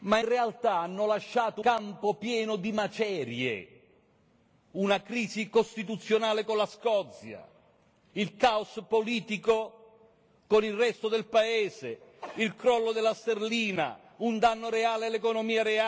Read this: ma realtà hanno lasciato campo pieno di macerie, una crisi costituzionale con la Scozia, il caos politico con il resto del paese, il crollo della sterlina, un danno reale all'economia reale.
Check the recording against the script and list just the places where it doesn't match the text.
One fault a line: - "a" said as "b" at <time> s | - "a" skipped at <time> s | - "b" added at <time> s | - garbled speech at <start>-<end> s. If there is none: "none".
none